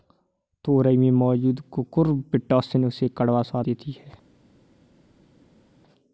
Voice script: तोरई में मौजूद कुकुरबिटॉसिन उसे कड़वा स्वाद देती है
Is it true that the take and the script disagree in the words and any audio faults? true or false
false